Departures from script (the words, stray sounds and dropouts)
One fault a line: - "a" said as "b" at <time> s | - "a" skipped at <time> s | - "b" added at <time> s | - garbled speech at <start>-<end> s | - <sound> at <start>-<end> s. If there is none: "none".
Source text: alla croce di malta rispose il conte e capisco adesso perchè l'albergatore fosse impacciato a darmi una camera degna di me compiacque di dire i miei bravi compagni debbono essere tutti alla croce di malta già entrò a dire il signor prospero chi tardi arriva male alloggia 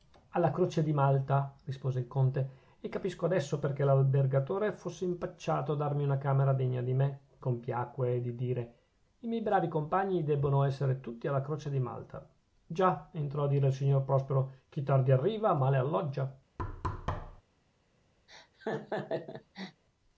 - thud at 16.6-17.4 s
- laugh at 18.3-19.8 s